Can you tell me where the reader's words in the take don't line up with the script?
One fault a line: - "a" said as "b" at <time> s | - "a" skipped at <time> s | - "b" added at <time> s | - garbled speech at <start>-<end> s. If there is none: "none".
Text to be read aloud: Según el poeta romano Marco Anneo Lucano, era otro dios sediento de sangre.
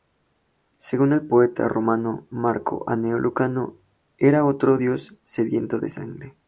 none